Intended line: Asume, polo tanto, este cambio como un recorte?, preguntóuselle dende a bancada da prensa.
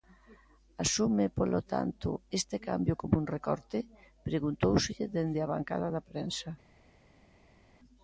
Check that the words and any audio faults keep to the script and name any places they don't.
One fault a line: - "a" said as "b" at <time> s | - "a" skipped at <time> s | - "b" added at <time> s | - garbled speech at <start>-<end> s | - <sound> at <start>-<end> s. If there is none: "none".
none